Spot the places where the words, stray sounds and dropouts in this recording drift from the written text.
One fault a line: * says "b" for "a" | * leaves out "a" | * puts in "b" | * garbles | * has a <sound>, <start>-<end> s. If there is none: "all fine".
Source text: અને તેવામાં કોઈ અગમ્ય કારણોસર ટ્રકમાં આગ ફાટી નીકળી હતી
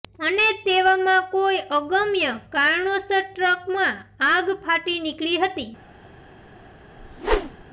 * has a whoosh, 7.0-7.6 s